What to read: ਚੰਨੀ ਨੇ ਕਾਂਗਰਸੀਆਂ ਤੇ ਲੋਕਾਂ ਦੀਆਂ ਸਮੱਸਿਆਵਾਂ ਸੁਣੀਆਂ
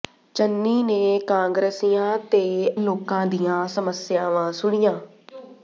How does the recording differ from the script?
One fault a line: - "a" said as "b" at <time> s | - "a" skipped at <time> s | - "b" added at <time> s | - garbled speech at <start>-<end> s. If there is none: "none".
none